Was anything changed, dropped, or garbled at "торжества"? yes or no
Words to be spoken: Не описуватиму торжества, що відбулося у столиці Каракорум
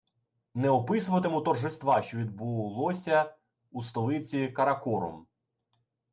no